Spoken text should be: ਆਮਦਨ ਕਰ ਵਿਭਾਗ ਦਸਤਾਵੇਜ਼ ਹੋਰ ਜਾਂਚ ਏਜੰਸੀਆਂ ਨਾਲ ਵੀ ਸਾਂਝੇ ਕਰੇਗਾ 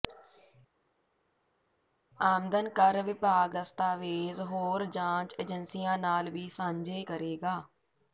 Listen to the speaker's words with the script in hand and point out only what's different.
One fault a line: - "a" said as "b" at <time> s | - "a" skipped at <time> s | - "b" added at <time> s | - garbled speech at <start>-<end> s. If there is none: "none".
none